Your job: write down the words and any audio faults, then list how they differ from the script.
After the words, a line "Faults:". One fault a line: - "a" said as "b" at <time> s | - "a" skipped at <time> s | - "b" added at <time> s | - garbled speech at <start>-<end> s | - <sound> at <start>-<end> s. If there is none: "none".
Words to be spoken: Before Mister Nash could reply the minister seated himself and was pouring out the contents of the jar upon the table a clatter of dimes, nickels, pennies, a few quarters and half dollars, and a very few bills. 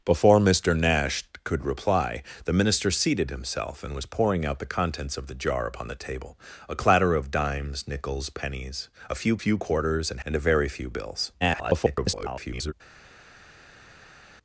Before Mister Nash could reply the minister seated himself and was pouring out the contents of the jar upon the table a clatter of dimes, nickels, pennies, a few few quarters and and a very few bills. [garbled]
Faults:
- "few" added at 9.4 s
- "half dollars" skipped at 10.2 s
- garbled speech at 11.4-12.7 s